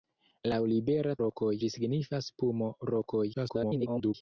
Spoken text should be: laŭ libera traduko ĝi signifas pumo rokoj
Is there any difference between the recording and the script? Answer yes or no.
yes